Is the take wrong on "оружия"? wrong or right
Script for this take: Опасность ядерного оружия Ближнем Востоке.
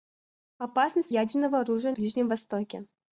right